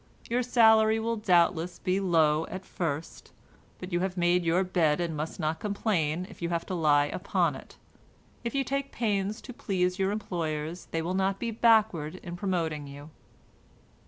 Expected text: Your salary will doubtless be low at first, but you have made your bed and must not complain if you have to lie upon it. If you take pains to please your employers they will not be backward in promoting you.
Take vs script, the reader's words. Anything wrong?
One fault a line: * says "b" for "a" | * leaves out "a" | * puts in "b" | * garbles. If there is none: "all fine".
all fine